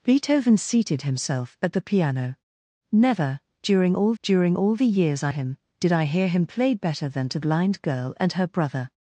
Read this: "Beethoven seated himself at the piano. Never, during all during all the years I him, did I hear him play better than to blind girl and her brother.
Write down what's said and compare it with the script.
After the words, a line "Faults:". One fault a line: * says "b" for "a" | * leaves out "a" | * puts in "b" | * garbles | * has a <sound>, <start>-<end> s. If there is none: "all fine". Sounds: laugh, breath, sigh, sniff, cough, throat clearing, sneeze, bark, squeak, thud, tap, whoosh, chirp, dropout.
"Beethoven seated himself at the piano. Never, during all during all the years I him, did I hear him play better than to blind girl and her brother.
Faults:
all fine